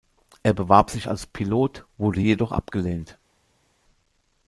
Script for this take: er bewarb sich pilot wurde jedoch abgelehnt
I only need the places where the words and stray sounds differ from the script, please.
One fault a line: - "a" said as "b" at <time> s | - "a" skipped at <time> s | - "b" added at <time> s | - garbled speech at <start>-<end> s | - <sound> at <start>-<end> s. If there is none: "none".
- "als" added at 1.1 s